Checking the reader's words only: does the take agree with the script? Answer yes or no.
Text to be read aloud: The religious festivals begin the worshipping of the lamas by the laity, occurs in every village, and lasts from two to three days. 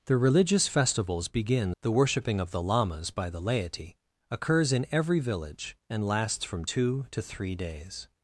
yes